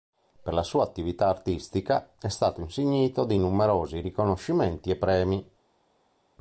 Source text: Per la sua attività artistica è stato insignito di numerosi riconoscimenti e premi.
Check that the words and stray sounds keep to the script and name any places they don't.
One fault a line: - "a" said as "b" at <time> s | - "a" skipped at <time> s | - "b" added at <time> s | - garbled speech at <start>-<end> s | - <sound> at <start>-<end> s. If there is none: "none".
none